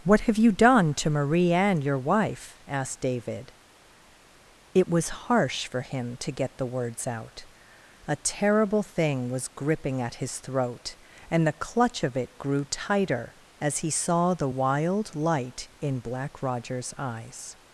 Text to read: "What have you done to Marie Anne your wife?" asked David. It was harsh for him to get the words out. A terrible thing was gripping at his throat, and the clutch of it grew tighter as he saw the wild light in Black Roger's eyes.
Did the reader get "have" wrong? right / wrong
right